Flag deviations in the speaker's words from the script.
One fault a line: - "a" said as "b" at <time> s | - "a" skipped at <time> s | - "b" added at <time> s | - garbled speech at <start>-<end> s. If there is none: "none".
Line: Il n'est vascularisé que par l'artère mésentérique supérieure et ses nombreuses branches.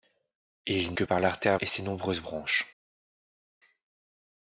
- "n'est vascularisé" skipped at 0.9 s
- "mésentérique supérieure" skipped at 1.6 s